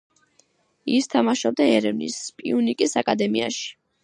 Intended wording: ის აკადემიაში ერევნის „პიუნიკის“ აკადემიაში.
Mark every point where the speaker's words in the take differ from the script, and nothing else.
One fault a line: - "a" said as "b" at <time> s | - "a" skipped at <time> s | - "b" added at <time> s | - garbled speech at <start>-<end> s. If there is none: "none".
- "აკადემიაში" said as "თამაშობდა" at 1.1 s